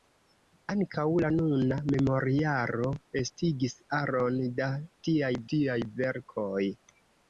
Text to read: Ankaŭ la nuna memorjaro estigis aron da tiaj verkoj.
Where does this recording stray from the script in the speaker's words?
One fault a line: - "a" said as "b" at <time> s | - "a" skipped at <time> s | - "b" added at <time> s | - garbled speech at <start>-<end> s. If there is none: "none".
- "tiaj" added at 5.5 s